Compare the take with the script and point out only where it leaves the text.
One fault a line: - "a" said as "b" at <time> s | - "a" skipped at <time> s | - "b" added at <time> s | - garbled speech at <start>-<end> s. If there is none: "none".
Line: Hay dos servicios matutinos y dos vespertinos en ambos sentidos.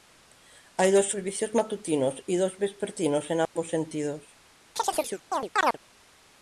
none